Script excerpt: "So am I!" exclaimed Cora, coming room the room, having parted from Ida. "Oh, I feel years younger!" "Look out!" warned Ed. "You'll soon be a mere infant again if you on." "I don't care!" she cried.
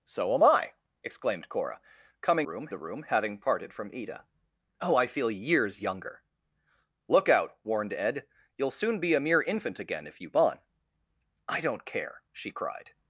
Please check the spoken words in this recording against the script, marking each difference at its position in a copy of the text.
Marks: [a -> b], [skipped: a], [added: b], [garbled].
"So am I!" exclaimed Cora, coming room the room, having parted from Ida. "Oh, I feel years younger!" "Look out!" warned Ed. "You'll soon be a mere infant again if you on." "I don't care!" she cried.